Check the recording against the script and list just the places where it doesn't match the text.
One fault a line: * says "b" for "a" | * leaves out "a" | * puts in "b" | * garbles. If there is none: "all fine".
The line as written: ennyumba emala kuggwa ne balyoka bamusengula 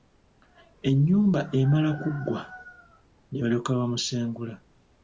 all fine